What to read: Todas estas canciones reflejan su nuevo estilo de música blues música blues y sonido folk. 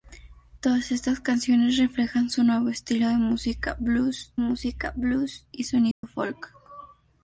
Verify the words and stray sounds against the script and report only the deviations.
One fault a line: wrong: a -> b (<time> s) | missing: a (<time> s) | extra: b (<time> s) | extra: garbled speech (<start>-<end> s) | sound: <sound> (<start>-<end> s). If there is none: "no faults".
sound: dropout (5.9-6.0 s)